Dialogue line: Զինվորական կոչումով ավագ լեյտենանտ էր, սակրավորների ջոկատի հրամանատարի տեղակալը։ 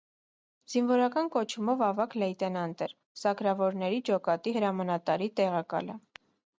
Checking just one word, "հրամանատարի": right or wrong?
right